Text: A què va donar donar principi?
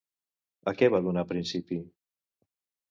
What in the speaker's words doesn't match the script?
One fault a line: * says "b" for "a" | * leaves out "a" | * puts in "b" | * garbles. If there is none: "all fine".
* leaves out "donar"